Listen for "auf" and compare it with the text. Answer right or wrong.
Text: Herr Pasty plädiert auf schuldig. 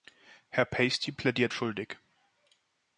wrong